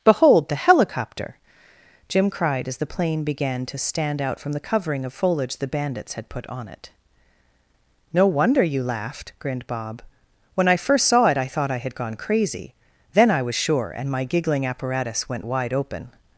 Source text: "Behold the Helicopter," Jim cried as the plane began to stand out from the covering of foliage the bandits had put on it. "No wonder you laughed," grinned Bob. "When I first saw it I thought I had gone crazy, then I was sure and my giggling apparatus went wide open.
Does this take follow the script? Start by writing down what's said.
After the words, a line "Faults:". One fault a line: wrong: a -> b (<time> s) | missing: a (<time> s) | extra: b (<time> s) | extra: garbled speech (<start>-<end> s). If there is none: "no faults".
"Behold the Helicopter," Jim cried as the plane began to stand out from the covering of foliage the bandits had put on it. "No wonder you laughed," grinned Bob. "When I first saw it I thought I had gone crazy, then I was sure and my giggling apparatus went wide open.
Faults:
no faults